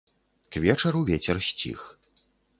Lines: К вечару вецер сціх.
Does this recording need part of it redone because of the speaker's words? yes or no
no